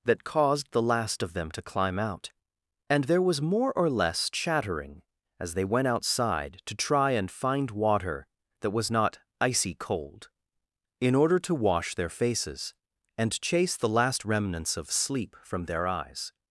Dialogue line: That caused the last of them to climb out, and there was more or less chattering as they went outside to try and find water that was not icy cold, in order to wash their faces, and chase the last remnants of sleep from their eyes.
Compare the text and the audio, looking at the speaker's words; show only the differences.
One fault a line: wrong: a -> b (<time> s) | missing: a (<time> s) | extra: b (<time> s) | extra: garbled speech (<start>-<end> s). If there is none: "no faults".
no faults